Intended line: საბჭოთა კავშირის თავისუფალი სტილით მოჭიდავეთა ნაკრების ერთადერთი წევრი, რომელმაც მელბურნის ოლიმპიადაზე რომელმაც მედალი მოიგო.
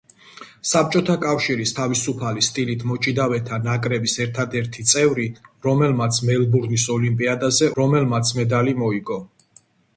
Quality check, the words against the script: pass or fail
pass